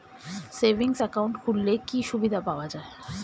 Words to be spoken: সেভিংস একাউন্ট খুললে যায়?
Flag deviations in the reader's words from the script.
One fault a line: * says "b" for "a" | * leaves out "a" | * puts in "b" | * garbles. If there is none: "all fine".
* puts in "কি সুবিধা পাওয়া"